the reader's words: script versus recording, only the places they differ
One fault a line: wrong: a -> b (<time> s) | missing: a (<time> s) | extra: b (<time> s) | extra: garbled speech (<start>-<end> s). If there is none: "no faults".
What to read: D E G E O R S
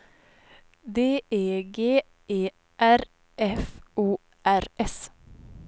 extra: R F (2.8 s)